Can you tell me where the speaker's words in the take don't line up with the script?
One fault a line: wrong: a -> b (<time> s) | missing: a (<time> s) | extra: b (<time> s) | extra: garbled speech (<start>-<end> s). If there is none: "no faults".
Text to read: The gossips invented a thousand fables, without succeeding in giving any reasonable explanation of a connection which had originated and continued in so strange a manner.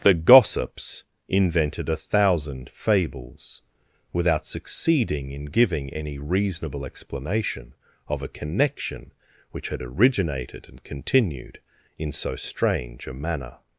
no faults